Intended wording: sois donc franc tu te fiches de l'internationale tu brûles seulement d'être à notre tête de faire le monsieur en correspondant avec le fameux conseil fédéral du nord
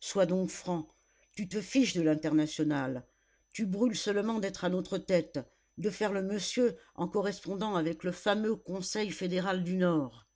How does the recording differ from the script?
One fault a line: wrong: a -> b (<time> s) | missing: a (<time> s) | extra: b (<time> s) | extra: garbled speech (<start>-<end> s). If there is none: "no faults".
no faults